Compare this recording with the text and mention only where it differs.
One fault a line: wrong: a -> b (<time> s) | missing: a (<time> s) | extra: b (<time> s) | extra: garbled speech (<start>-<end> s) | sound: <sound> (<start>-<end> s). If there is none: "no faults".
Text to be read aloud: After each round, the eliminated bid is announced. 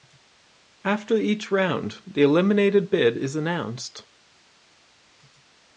no faults